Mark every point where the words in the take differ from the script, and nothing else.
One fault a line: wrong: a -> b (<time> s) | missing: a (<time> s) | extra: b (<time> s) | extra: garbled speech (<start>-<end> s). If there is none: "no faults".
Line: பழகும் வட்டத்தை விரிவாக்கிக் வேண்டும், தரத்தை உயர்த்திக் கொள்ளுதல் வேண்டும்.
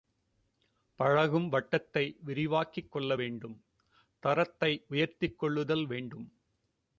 extra: கொள்ள (2.9 s)